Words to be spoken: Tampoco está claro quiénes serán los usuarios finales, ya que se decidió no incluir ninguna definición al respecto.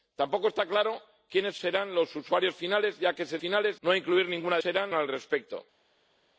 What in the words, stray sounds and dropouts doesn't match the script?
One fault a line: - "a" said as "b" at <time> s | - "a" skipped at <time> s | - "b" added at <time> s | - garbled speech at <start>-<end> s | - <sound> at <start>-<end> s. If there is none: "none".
- "decidió" said as "finales" at 3.4 s
- "definición" said as "serán" at 4.6 s